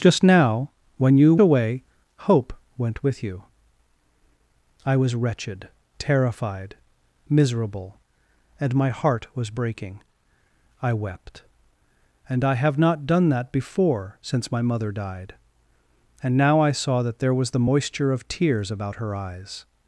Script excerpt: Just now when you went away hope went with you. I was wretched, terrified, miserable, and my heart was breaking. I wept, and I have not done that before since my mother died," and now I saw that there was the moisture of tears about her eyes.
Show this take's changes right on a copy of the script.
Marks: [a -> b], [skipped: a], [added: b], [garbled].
Just now when you [skipped: went] away hope went with you. I was wretched, terrified, miserable, and my heart was breaking. I wept, and I have not done that before since my mother died," and now I saw that there was the moisture of tears about her eyes.